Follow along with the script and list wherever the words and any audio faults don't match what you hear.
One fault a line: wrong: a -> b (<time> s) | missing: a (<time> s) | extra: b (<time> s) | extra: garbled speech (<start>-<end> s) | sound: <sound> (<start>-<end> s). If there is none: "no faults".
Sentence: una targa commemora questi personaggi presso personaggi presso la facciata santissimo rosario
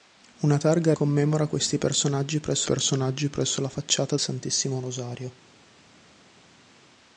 no faults